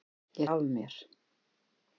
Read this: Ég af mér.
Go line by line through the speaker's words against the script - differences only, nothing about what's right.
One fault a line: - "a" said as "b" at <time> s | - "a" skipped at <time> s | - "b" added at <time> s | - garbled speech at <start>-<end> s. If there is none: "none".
none